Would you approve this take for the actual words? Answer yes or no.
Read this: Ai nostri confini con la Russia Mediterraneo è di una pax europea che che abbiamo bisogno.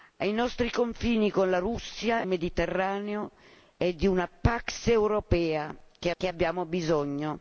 yes